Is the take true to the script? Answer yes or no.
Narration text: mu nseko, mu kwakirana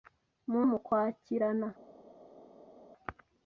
no